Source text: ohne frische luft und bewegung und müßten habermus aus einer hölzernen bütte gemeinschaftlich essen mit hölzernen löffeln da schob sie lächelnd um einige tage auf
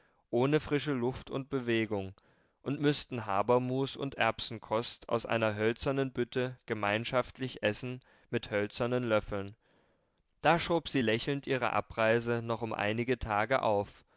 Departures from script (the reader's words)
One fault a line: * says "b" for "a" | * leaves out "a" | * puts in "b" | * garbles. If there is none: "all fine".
* puts in "und erbsenkost"
* puts in "ihre abreise noch"